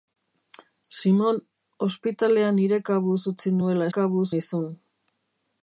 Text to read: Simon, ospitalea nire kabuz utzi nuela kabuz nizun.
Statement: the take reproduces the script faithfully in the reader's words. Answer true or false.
true